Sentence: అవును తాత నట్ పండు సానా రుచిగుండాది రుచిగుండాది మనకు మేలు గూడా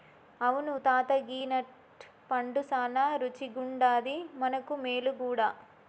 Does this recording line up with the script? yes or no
no